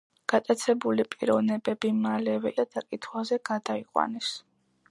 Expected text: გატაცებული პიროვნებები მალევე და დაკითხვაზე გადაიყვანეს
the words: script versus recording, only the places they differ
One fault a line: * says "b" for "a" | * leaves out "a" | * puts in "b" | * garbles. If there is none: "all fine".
all fine